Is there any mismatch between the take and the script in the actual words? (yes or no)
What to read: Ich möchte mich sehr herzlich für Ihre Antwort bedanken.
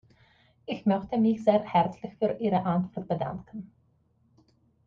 no